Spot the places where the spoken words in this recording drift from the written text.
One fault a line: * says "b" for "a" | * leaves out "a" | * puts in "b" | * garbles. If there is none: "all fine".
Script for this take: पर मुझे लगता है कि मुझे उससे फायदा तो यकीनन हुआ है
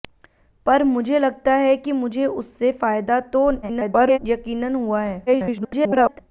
* garbles
* garbles